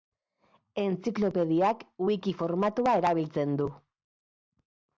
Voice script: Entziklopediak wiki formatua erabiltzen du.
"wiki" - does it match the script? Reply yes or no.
yes